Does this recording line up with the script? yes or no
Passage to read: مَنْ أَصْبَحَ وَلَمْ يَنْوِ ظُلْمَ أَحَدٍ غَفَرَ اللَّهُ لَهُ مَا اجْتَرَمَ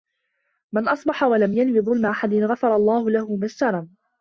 yes